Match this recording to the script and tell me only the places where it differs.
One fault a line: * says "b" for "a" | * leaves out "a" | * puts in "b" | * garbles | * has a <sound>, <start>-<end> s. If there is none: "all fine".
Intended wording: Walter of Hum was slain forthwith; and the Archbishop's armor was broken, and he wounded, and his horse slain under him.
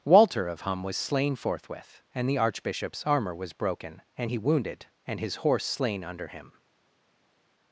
all fine